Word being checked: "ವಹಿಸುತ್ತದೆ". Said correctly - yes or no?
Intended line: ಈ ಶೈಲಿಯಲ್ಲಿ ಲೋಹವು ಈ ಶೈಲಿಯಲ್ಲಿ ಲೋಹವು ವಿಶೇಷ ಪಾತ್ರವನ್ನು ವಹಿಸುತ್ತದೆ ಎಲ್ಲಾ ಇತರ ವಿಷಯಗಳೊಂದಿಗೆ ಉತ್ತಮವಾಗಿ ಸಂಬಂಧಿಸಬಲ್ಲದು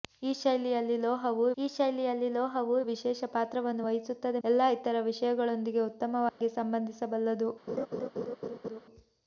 yes